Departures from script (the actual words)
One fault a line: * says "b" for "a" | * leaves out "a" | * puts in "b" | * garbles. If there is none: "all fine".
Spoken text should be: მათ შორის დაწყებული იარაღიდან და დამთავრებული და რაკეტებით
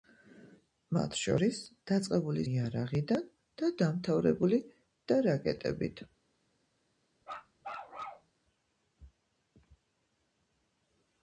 all fine